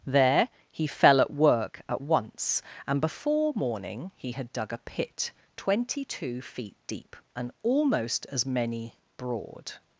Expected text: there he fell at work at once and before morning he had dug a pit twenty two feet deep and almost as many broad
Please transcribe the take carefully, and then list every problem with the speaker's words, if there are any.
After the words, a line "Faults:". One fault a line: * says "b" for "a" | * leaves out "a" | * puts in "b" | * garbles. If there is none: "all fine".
there he fell at work at once and before morning he had dug a pit twenty two feet deep and almost as many broad
Faults:
all fine